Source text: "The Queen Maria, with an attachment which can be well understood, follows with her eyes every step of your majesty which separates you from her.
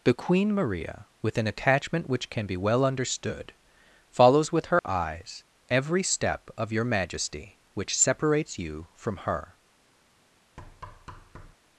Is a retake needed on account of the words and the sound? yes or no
yes